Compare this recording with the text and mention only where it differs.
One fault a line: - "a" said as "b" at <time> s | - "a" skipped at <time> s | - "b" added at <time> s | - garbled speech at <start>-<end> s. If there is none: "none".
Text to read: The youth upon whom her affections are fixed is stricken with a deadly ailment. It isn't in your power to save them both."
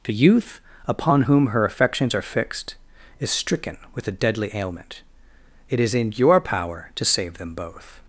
- "isn't" said as "is" at 5.8 s